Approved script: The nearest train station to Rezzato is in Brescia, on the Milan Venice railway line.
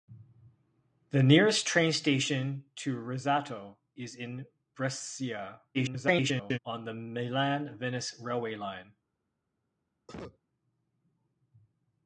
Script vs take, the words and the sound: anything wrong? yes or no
yes